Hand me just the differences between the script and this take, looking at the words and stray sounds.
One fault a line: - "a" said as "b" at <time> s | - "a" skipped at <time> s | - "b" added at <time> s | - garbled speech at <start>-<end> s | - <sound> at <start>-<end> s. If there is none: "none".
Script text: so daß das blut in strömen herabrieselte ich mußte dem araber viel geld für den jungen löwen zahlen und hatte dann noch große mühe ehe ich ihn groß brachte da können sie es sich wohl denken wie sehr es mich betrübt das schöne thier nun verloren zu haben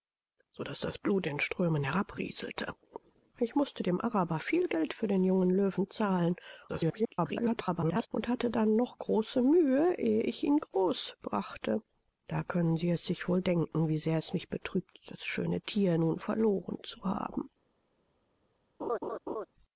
- garbled speech at 6.7-8.1 s
- laugh at 18.8-19.5 s